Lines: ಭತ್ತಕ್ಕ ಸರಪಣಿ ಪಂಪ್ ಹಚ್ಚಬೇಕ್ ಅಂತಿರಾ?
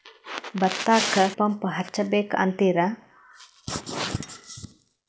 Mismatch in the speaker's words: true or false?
true